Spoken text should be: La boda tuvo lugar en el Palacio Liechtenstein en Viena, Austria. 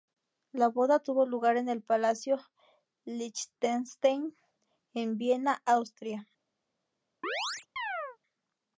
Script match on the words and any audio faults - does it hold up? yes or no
no